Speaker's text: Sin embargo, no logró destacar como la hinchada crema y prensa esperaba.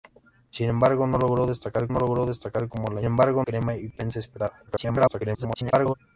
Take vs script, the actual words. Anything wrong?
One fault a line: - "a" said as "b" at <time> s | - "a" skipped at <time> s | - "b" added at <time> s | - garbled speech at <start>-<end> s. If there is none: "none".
- "no logró destacar" added at 1.9 s
- "hinchada" said as "embargo" at 3.0 s
- garbled speech at 4.7-5.9 s